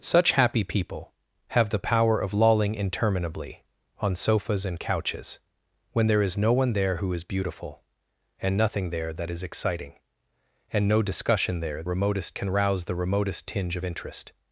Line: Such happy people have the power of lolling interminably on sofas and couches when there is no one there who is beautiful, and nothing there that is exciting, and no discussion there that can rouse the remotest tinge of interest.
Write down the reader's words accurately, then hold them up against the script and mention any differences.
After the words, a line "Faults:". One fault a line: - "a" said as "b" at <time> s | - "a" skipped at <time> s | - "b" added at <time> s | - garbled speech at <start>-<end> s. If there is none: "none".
Such happy people have the power of lolling interminably on sofas and couches when there is no one there who is beautiful, and nothing there that is exciting, and no discussion there remotest can rouse the remotest tinge of interest.
Faults:
- "that" said as "remotest" at 11.9 s